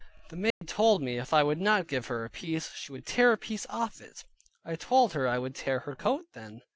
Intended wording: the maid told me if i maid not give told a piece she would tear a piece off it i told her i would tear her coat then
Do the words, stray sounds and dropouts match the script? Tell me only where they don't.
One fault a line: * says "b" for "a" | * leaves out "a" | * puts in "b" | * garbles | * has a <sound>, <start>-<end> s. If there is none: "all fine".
* has a dropout, 0.5-0.6 s
* says "would" for "maid"
* says "her" for "told"